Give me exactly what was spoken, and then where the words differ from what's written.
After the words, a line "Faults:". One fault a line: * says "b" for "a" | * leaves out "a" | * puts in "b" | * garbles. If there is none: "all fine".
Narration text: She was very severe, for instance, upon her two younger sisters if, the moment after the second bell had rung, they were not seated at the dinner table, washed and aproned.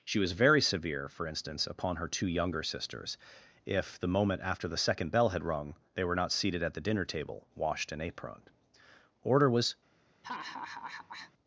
She was very severe, for instance, upon her two younger sisters if, the moment after the second bell had rung, they were not seated at the dinner table, washed and aproned. Order was
Faults:
* puts in "Order was"